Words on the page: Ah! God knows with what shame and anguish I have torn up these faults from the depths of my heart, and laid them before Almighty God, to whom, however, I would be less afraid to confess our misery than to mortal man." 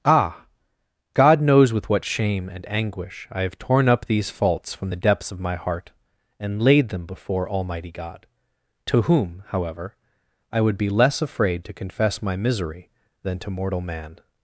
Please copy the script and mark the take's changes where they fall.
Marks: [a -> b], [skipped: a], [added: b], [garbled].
Ah! God knows with what shame and anguish I have torn up these faults from the depths of my heart, and laid them before Almighty God, to whom, however, I would be less afraid to confess [our -> my] misery than to mortal man."